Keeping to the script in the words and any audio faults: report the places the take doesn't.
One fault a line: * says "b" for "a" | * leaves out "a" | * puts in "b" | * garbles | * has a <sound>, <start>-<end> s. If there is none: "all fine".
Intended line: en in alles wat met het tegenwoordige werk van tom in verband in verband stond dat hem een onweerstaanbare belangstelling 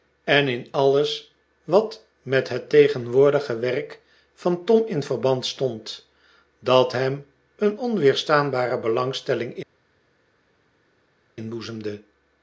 * leaves out "in verband"